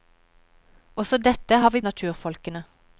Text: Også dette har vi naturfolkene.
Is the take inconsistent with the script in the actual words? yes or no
no